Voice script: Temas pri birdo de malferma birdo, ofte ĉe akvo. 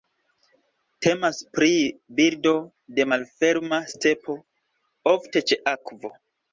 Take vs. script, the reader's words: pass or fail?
fail